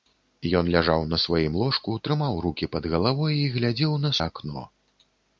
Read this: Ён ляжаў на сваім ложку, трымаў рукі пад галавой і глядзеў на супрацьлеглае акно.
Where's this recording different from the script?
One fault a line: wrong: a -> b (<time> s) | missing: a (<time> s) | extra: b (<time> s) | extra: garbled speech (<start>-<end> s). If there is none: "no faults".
missing: супрацьлеглае (4.1 s)